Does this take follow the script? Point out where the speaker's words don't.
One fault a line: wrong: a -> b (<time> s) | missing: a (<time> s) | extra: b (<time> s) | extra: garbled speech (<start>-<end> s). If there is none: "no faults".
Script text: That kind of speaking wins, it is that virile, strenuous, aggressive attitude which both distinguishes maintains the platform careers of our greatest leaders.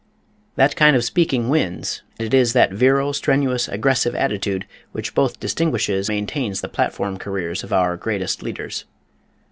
no faults